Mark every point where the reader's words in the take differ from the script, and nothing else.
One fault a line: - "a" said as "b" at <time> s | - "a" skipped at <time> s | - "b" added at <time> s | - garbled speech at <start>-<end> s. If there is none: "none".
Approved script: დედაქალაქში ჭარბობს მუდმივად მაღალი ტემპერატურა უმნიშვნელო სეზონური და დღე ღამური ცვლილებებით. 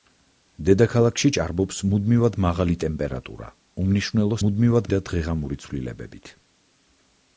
- "სეზონური" said as "მუდმივად" at 4.4 s